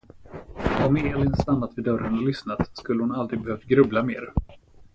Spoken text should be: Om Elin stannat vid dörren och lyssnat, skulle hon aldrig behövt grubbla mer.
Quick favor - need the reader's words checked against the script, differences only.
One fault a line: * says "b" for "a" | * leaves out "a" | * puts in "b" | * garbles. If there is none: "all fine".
all fine